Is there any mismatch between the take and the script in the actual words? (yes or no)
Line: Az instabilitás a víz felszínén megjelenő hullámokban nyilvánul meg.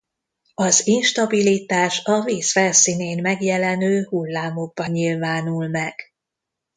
no